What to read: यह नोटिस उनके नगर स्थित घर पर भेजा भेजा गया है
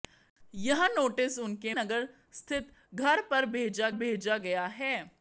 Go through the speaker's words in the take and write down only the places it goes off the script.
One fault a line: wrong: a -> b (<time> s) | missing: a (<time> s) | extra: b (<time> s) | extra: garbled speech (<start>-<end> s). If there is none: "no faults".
no faults